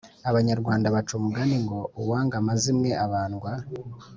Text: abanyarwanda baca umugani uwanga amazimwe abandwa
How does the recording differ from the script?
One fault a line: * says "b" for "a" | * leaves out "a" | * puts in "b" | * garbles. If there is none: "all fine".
* puts in "ngo"